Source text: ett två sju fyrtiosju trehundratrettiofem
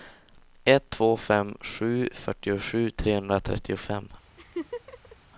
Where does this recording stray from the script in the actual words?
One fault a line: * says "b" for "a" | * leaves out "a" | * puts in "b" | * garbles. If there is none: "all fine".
* puts in "fem"